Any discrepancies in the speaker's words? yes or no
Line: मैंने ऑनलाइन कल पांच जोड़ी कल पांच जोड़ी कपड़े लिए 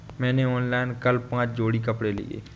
yes